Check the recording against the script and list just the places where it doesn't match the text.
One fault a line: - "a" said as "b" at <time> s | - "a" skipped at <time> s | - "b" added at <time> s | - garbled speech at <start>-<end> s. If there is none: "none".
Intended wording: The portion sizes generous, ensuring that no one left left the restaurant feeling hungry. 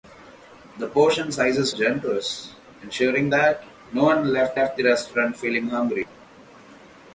none